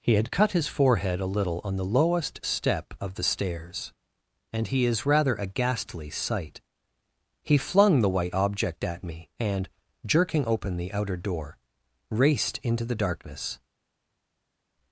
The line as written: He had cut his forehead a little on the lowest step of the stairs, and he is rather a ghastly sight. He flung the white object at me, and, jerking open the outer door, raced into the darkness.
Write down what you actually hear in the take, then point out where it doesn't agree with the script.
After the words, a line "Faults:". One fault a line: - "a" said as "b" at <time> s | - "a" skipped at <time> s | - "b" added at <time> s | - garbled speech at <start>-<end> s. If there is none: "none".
He had cut his forehead a little on the lowest step of the stairs, and he is rather a ghastly sight. He flung the white object at me, and, jerking open the outer door, raced into the darkness.
Faults:
none